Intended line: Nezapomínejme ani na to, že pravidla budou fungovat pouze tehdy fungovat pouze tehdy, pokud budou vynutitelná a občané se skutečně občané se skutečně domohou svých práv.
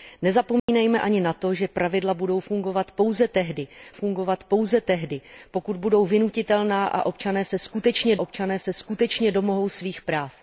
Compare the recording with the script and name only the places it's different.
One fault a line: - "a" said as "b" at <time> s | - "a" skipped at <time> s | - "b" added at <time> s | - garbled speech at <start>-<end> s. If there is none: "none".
none